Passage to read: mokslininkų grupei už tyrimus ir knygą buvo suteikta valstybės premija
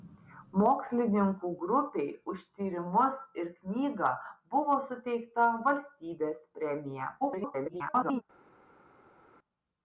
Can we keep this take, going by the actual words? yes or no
no